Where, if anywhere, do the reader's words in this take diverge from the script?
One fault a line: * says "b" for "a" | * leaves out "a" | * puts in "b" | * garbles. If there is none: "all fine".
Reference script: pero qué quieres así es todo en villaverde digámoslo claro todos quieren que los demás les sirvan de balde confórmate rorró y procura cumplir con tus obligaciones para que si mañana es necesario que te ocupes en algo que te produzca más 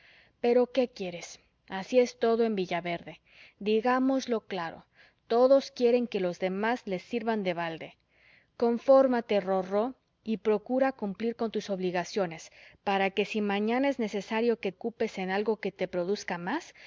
* leaves out "te"